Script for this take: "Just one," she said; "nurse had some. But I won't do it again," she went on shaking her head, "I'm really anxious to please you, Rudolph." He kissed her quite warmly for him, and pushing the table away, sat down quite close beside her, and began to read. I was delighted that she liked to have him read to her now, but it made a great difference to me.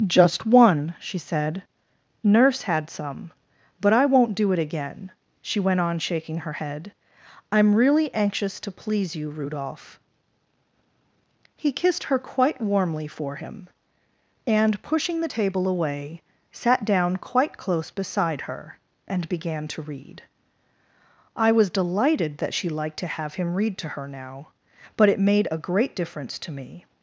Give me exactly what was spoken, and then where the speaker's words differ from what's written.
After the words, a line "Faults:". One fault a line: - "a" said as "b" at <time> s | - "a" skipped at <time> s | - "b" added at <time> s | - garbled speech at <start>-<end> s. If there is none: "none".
"Just one," she said; "nurse had some. But I won't do it again," she went on shaking her head, "I'm really anxious to please you, Rudolph." He kissed her quite warmly for him, and pushing the table away, sat down quite close beside her, and began to read. I was delighted that she liked to have him read to her now, but it made a great difference to me.
Faults:
none